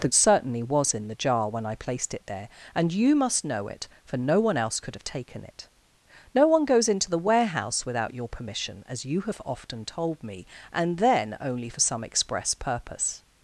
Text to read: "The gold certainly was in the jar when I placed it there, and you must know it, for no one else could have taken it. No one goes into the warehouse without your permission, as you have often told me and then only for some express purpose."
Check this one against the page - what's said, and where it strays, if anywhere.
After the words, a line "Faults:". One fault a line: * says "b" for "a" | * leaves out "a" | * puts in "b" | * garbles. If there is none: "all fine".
"The certainly was in the jar when I placed it there, and you must know it, for no one else could have taken it. No one goes into the warehouse without your permission, as you have often told me and then only for some express purpose."
Faults:
* leaves out "gold"